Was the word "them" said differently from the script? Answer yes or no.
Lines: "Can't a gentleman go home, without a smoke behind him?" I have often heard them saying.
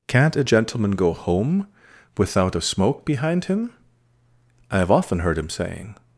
yes